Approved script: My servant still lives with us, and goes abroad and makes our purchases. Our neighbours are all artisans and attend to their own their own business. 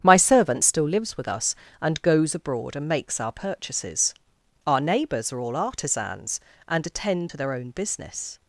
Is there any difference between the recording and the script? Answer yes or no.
yes